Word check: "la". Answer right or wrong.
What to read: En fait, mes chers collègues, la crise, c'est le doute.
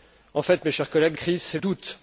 wrong